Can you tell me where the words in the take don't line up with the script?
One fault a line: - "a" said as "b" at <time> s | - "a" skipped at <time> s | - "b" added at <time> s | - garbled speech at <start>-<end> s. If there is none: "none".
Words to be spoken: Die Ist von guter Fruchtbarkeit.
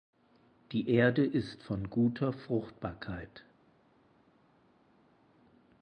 - "Erde" added at 0.9 s